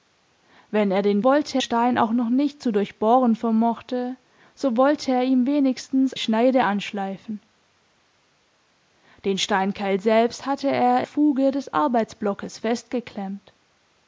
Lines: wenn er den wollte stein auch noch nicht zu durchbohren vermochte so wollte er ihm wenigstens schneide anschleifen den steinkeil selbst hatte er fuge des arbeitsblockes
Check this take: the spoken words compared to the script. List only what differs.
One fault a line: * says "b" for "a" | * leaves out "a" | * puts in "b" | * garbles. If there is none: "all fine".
all fine